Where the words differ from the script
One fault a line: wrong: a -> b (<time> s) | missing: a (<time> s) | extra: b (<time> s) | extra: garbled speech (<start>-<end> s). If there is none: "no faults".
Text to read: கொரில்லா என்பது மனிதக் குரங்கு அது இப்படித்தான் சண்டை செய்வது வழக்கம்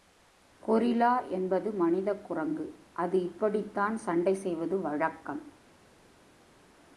no faults